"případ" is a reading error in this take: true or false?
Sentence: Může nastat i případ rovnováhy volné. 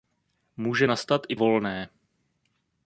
true